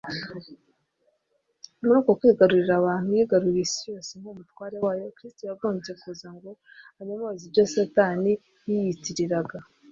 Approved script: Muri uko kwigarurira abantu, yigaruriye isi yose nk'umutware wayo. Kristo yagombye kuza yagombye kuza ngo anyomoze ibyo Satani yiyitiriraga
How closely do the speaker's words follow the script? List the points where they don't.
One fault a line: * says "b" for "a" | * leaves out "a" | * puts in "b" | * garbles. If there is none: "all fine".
* leaves out "yagombye kuza"